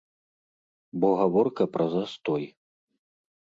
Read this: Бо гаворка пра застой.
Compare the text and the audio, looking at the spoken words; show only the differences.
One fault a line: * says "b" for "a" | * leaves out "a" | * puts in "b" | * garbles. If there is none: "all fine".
all fine